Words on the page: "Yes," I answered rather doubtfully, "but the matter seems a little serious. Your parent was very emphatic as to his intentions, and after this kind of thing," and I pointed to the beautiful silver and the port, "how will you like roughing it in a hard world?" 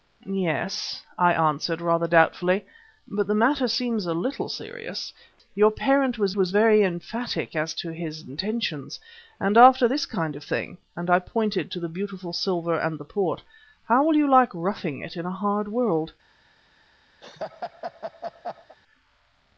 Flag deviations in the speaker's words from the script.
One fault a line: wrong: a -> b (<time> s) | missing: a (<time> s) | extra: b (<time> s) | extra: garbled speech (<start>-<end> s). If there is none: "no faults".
extra: was (6.3 s)